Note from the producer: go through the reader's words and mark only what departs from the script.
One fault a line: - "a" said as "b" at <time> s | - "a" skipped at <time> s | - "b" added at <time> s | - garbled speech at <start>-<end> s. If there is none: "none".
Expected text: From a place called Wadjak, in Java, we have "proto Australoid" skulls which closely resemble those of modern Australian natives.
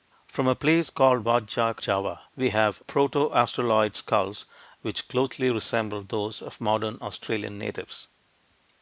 - "in" skipped at 1.8 s